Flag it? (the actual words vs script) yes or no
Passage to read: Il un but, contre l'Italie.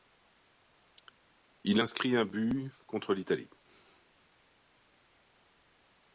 yes